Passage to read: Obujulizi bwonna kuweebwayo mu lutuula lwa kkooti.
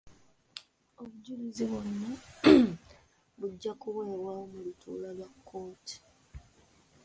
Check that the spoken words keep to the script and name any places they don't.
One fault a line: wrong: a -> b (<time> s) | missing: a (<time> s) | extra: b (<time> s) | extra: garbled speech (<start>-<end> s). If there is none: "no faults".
extra: bujja (3.4 s)